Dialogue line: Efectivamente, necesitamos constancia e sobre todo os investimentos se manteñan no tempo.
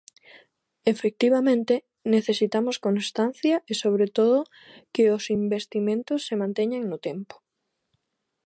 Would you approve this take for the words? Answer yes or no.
no